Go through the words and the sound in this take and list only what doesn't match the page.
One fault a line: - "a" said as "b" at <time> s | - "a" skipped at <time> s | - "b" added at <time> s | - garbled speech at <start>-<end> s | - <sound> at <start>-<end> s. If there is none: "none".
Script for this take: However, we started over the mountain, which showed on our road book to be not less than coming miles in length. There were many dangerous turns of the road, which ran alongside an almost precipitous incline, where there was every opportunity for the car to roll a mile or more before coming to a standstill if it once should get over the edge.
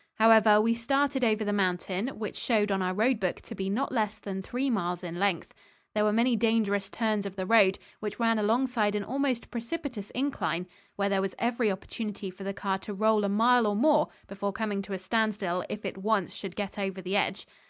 - "coming" said as "three" at 4.4 s